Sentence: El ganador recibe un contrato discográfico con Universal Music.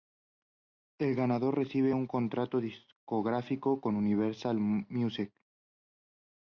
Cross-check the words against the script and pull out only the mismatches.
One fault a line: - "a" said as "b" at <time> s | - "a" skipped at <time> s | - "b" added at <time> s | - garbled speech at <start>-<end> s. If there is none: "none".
none